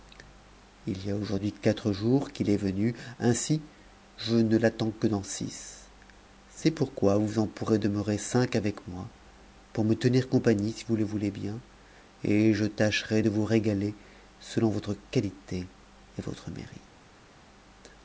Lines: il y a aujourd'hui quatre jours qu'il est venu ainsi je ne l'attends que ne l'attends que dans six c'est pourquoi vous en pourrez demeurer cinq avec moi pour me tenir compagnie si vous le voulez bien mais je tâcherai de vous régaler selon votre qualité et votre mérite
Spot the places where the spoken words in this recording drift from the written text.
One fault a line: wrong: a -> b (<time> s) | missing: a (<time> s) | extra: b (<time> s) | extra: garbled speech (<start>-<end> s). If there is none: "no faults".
missing: ne l'attends que (5.0 s)
wrong: mais -> et (12.2 s)